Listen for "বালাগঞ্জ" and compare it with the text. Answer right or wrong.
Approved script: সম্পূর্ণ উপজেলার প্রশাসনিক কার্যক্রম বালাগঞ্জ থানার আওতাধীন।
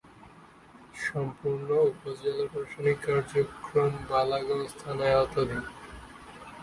right